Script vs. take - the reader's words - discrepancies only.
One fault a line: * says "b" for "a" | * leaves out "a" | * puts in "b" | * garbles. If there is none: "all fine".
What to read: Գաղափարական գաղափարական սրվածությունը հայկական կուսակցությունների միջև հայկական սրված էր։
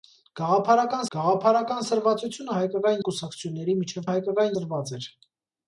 all fine